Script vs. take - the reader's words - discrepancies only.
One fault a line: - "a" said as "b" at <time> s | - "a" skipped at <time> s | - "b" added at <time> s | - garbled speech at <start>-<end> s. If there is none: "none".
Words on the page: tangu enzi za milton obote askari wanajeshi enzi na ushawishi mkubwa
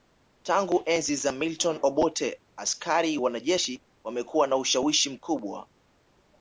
- "enzi" said as "wamekuwa" at 4.0 s